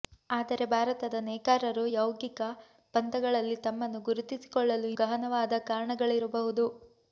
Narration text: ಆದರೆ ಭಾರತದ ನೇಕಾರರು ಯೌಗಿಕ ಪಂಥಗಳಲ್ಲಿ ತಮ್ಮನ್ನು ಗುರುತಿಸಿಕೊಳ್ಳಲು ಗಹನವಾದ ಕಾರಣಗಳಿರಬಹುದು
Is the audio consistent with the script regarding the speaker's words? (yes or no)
yes